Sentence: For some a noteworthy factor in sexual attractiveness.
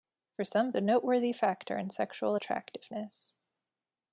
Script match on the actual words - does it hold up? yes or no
yes